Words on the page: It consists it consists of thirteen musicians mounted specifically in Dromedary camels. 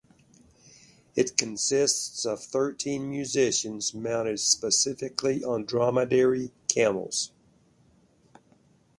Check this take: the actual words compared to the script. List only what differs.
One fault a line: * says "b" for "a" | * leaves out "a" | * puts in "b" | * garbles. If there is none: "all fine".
* leaves out "it consists"
* says "on" for "in"